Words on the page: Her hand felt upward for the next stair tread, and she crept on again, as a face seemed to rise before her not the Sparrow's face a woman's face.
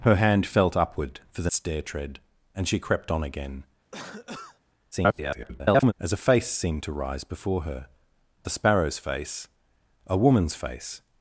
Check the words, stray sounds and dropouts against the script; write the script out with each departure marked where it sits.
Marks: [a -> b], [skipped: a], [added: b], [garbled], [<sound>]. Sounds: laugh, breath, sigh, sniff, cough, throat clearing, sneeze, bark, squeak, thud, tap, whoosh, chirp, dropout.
Her hand felt upward for the [skipped: next] stair tread, and she crept on again, [cough] [garbled] as a face seemed to rise before her [skipped: not] the Sparrow's face a woman's face.